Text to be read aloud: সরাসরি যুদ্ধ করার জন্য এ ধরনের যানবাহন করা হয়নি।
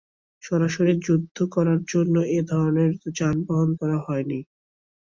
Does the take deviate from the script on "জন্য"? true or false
false